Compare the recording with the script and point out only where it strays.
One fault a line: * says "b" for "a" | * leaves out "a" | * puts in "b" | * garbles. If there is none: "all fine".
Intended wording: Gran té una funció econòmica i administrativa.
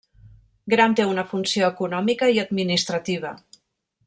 all fine